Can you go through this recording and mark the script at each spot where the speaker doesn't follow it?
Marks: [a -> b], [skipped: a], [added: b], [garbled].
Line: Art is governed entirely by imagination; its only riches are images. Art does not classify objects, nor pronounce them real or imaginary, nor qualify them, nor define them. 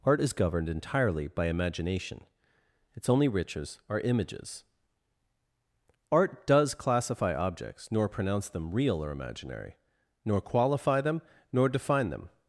Art is governed entirely by imagination; its only riches are images. Art does [skipped: not] classify objects, nor pronounce them real or imaginary, nor qualify them, nor define them.